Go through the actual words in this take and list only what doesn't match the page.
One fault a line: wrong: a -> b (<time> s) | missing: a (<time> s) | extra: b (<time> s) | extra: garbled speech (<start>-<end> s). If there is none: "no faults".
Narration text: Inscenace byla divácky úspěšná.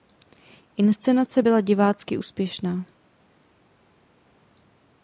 no faults